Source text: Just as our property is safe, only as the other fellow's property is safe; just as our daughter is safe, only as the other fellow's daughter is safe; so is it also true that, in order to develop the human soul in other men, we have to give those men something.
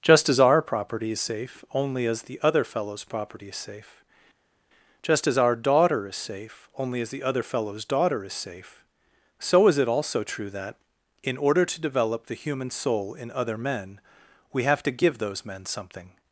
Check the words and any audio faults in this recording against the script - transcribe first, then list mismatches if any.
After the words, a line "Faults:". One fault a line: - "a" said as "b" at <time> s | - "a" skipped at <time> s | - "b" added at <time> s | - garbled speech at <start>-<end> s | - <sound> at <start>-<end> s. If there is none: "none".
Just as our property is safe, only as the other fellow's property is safe; just as our daughter is safe, only as the other fellow's daughter is safe; so is it also true that, in order to develop the human soul in other men, we have to give those men something.
Faults:
none